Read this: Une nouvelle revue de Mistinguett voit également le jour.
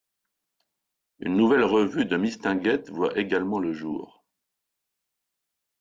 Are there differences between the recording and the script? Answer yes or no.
no